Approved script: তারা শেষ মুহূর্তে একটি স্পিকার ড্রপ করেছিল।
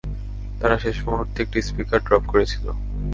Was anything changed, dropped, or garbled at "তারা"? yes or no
no